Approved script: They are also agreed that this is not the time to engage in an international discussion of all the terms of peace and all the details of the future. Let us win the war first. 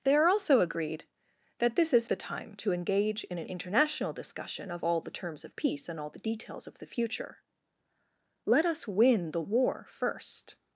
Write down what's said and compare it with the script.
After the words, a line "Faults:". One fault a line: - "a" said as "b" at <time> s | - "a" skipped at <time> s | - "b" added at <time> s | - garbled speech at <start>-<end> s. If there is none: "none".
They are also agreed that this is the time to engage in an international discussion of all the terms of peace and all the details of the future. Let us win the war first.
Faults:
- "not" skipped at 2.1 s